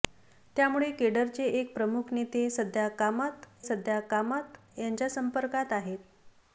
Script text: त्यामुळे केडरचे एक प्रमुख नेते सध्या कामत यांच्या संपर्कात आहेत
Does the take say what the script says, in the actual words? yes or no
no